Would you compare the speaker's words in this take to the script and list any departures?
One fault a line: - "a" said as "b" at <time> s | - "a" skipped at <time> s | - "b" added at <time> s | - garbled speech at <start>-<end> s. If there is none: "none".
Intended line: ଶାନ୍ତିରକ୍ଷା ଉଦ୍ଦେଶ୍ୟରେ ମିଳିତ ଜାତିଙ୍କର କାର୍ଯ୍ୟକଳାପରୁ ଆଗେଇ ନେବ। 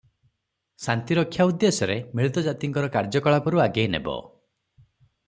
none